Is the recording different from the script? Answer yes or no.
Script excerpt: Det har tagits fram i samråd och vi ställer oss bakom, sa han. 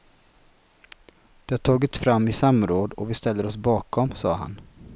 no